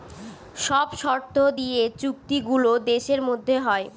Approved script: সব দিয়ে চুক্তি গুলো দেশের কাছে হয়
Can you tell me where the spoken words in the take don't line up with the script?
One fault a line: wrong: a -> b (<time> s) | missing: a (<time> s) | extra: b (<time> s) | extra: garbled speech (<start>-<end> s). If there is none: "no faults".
extra: শর্ত (1.0 s)
wrong: কাছে -> মধ্যে (3.3 s)